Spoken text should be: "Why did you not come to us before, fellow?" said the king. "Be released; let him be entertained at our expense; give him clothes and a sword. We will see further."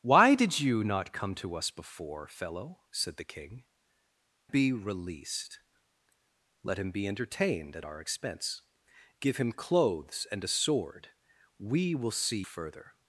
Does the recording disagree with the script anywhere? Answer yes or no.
no